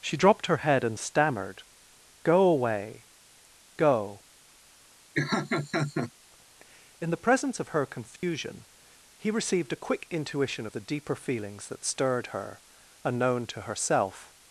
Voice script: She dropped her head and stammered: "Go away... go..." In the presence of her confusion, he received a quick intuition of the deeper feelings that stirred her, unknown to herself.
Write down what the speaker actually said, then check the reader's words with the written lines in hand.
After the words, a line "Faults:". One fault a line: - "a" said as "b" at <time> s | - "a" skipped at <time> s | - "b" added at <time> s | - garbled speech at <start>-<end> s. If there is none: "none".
She dropped her head and stammered: "Go away... go..." In the presence of her confusion, he received a quick intuition of the deeper feelings that stirred her, unknown to herself.
Faults:
none